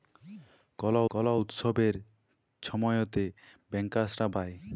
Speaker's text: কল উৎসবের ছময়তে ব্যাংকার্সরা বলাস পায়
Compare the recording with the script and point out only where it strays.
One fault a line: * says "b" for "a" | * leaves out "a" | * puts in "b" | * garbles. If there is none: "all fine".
* puts in "কল"
* leaves out "বলাস"